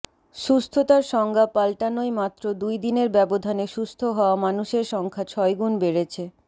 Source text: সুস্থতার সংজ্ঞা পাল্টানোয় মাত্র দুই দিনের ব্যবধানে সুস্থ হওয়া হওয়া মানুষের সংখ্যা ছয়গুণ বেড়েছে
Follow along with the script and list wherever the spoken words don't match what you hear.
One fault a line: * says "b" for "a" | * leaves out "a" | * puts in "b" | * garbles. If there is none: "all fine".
* leaves out "হওয়া"